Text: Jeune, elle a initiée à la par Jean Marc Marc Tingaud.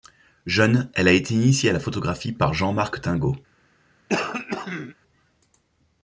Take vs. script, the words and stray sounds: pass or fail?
fail